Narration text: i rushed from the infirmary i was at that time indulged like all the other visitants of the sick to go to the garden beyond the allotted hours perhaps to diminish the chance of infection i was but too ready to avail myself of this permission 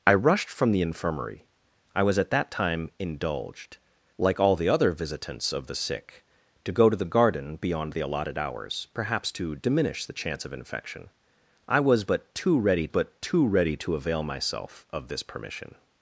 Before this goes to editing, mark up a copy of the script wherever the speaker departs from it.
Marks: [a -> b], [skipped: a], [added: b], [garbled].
i rushed from the infirmary i was at that time indulged like all the other visitants of the sick to go to the garden beyond the allotted hours perhaps to diminish the chance of infection i was but too ready [added: but too ready] to avail myself of this permission